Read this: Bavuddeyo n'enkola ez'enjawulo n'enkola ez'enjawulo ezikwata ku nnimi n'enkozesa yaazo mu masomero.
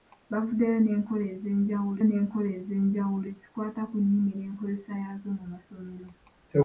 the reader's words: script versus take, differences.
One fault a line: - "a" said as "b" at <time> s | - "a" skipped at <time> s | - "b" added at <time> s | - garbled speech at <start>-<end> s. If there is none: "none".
none